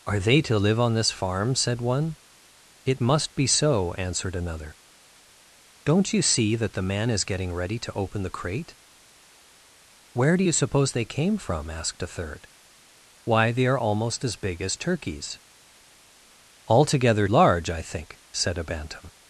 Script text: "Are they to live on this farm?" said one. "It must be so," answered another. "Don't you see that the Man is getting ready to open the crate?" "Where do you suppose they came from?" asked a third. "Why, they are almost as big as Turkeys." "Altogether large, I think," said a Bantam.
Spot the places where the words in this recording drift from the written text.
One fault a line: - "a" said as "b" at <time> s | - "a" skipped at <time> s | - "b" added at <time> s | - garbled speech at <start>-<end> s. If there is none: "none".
none